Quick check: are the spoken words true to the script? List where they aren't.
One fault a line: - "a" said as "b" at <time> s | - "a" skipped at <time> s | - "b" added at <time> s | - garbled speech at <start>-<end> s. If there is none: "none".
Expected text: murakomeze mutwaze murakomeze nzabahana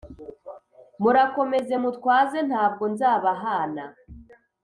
- "murakomeze" said as "ntabwo" at 2.5 s